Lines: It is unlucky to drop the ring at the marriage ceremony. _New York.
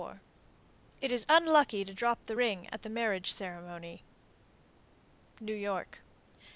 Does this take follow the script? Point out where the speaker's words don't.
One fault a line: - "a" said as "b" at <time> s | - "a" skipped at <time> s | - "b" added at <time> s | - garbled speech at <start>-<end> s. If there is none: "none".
none